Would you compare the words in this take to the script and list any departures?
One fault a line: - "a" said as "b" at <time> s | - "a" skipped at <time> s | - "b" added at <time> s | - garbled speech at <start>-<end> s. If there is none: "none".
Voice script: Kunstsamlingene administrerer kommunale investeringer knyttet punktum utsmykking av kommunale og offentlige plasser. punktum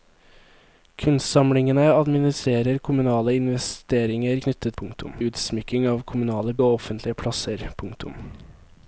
none